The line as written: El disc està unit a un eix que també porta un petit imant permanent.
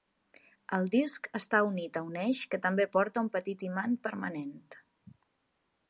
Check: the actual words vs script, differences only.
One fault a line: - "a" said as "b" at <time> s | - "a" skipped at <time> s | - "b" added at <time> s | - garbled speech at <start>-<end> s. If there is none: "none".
none